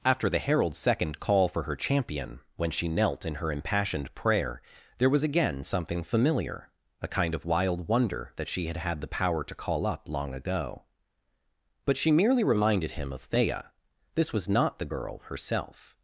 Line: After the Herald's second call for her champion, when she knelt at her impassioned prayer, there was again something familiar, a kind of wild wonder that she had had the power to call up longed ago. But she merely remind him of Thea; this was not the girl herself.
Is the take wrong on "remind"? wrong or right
wrong